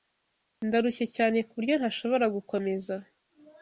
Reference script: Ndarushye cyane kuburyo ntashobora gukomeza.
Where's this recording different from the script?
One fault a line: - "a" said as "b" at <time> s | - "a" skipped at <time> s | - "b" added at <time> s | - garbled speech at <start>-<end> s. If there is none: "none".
none